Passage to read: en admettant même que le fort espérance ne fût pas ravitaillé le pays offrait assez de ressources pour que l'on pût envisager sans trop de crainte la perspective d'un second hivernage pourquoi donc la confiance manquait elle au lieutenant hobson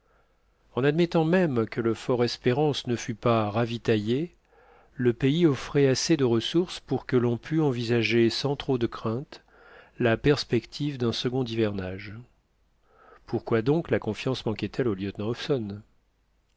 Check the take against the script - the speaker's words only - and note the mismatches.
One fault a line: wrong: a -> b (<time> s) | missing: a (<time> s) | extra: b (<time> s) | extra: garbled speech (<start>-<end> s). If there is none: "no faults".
no faults